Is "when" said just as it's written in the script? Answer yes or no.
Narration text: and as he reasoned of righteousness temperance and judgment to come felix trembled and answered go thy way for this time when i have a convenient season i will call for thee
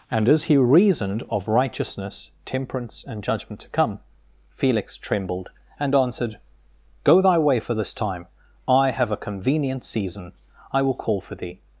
no